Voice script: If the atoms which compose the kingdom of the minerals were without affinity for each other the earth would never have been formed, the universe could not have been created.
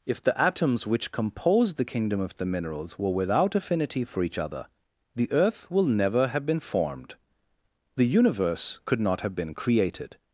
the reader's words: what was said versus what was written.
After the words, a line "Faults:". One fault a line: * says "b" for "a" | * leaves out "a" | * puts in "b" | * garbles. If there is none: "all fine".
If the atoms which compose the kingdom of the minerals were without affinity for each other the earth will never have been formed, the universe could not have been created.
Faults:
* says "will" for "would"